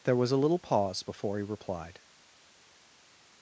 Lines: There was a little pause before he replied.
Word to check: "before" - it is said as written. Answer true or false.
true